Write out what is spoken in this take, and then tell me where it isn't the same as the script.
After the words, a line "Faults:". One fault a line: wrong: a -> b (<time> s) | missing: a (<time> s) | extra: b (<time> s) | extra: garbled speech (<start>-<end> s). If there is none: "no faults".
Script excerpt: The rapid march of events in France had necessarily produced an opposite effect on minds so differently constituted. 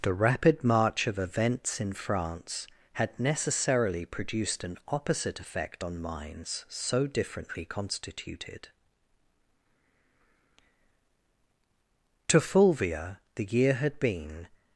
The rapid march of events in France had necessarily produced an opposite effect on minds so differently constituted. To Fulvia the year had been
Faults:
extra: To Fulvia the year had been (12.3 s)